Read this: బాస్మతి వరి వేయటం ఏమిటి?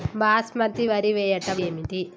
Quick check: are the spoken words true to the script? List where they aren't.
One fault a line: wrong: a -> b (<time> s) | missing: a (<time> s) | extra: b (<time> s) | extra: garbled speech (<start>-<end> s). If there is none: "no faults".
no faults